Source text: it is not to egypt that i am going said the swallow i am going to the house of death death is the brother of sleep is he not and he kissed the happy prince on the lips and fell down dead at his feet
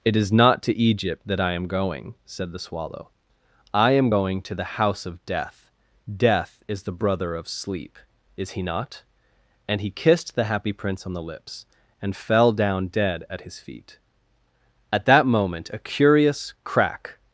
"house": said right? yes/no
yes